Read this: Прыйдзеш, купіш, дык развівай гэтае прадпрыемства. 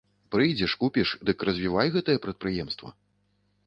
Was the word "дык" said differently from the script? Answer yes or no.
no